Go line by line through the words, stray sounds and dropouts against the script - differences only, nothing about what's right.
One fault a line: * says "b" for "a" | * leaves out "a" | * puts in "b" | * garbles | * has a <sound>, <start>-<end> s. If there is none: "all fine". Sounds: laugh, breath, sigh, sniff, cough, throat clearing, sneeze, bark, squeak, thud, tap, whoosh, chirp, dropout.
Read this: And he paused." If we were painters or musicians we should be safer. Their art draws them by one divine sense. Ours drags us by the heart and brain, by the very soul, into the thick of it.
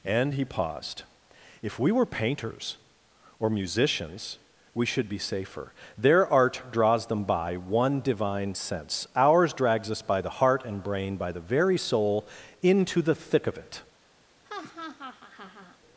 * has a laugh, 14.4-15.8 s